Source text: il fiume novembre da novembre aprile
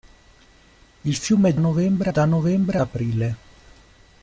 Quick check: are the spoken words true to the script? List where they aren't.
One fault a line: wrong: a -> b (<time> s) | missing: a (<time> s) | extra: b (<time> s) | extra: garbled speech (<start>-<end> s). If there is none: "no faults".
no faults